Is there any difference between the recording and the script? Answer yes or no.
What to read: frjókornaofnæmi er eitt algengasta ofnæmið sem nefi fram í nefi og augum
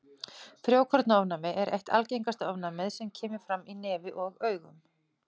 yes